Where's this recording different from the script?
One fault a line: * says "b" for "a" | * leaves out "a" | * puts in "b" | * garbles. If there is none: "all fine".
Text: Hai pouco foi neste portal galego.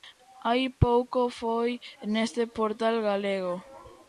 all fine